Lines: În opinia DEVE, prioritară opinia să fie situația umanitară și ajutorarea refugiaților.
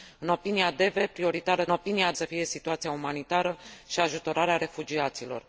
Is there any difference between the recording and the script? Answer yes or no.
no